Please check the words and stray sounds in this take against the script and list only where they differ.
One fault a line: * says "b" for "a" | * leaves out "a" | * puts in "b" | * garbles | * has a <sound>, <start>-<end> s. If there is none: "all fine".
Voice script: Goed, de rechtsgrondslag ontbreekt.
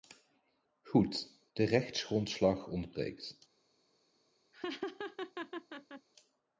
* has a laugh, 4.5-6.1 s